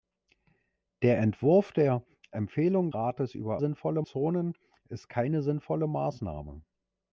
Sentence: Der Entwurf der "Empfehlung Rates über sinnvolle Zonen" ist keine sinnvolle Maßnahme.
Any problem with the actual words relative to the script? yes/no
no